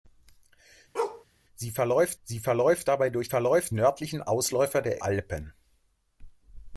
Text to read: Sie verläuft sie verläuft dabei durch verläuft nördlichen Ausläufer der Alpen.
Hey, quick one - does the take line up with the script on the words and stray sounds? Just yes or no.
no